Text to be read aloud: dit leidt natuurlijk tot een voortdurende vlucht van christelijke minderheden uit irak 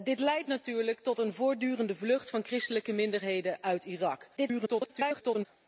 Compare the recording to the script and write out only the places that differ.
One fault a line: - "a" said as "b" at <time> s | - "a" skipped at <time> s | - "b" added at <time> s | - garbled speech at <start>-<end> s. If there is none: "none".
- garbled speech at 4.4-5.5 s